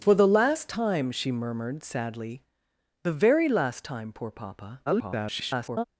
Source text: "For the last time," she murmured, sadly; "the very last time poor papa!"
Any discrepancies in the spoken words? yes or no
yes